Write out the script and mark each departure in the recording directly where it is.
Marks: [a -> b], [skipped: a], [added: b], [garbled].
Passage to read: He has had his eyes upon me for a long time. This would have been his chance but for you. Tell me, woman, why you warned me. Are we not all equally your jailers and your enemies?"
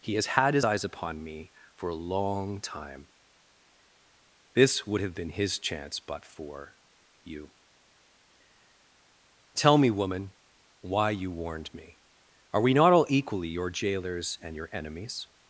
He has had his eyes upon me for a long time. This would have been his chance but for you. Tell me, woman, why you warned me. Are we not all equally your jailers and your enemies?"